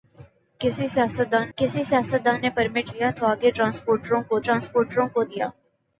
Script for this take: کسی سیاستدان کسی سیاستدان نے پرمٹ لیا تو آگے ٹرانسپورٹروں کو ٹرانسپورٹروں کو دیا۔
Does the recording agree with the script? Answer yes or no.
yes